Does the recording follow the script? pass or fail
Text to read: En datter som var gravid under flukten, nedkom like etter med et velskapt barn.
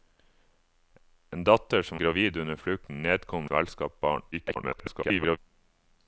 fail